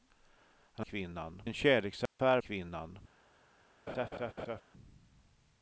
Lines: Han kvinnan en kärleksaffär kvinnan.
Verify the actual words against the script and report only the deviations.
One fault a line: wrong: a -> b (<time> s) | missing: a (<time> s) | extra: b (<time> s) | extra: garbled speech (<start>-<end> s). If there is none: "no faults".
no faults